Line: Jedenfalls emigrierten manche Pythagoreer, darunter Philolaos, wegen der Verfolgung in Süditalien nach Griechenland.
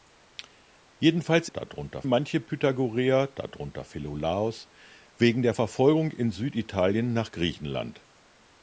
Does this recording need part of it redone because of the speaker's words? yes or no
yes